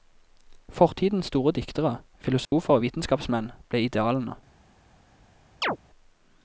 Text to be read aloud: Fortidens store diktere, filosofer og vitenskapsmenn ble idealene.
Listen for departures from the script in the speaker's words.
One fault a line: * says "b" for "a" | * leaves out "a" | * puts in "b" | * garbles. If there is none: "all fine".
all fine